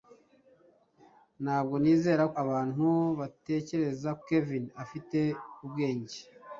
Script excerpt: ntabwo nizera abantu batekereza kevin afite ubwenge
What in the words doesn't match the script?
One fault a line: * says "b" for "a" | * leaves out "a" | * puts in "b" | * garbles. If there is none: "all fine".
all fine